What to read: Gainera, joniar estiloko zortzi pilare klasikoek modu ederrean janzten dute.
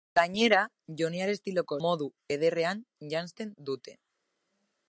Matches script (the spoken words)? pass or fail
fail